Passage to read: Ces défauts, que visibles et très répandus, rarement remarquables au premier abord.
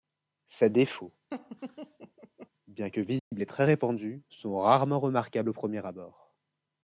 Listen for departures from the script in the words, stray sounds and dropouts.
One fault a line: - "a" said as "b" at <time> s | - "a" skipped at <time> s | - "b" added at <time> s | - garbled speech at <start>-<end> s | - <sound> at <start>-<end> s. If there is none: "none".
- laugh at 1.3-2.5 s
- "bien" added at 2.7 s
- dropout at 3.2-3.3 s
- "sont" added at 4.3 s